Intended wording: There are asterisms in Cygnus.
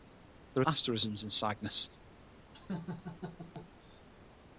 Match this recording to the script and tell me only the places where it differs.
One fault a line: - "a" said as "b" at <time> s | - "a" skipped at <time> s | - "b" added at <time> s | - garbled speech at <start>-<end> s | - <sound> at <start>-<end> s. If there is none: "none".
- laugh at 2.5-3.7 s